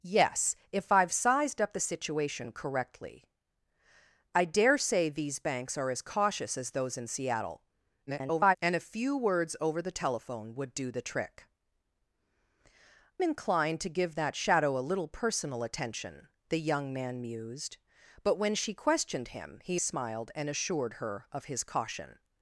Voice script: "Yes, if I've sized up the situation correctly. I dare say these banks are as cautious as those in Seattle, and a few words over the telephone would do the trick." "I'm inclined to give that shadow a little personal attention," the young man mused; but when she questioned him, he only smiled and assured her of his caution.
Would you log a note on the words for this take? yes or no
yes